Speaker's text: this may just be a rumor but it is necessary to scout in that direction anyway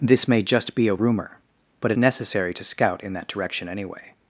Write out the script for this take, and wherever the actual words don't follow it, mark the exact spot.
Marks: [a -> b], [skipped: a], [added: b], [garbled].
this may just be a rumor but it [skipped: is] necessary to scout in that direction anyway